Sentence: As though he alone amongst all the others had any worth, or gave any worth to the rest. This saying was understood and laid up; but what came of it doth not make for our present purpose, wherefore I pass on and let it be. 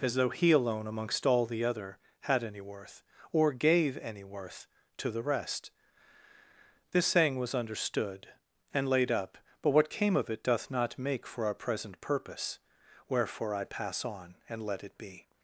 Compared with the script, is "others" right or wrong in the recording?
wrong